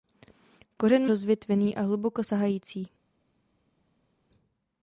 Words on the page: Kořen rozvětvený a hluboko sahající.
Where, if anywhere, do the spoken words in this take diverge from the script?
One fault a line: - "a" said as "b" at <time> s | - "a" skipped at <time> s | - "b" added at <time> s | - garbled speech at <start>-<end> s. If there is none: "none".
none